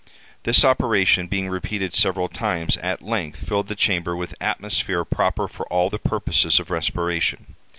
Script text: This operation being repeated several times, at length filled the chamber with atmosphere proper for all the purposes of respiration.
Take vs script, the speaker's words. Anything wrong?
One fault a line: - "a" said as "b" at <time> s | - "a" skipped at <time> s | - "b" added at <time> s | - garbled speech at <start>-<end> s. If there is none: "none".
none